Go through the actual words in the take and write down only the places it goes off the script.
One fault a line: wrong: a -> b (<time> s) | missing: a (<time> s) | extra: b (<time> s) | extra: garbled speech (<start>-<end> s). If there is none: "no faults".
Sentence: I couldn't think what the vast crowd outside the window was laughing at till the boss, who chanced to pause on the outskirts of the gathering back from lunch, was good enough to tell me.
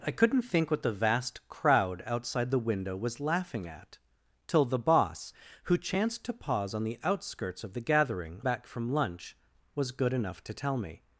no faults